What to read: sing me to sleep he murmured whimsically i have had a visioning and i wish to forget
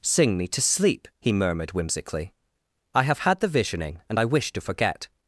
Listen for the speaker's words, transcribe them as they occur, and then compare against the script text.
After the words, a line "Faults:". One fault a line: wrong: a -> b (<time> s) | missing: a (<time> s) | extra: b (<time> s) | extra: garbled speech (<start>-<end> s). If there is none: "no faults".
sing me to sleep he murmured whimsically i have had the visioning and i wish to forget
Faults:
wrong: a -> the (3.4 s)